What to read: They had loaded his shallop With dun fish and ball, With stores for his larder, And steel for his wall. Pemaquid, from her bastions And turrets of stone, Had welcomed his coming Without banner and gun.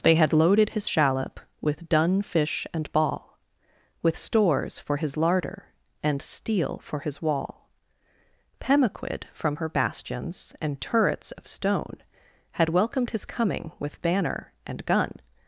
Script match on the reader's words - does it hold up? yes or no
no